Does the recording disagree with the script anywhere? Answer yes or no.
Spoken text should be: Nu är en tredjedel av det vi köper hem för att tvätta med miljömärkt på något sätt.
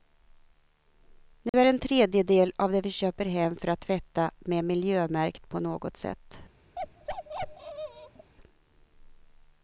no